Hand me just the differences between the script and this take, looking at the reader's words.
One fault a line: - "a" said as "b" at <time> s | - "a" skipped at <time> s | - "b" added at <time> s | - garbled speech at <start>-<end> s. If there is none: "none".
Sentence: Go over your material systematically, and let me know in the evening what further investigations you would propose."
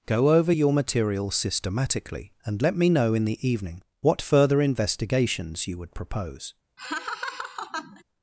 none